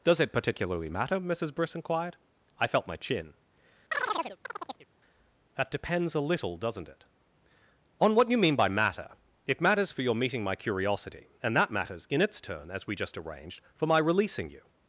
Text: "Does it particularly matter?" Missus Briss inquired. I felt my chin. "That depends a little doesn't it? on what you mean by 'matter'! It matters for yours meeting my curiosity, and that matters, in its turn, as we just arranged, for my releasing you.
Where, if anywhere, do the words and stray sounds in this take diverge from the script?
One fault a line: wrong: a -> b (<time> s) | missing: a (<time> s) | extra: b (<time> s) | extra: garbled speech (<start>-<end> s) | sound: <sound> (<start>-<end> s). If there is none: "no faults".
sound: chirp (3.9-4.9 s)
wrong: yours -> your (10.0 s)